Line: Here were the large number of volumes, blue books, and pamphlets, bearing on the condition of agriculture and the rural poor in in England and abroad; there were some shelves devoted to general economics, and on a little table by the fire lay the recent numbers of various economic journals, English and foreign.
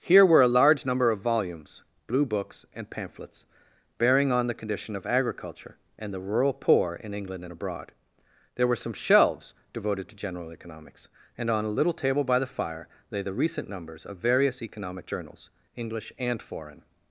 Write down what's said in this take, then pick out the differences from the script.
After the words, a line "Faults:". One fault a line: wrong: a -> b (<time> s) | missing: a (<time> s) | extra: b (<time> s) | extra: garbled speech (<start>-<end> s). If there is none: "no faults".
Here were a large number of volumes, blue books, and pamphlets, bearing on the condition of agriculture and the rural poor in England and abroad; there were some shelves devoted to general economics, and on a little table by the fire lay the recent numbers of various economic journals, English and foreign.
Faults:
wrong: the -> a (0.4 s)
missing: in (7.1 s)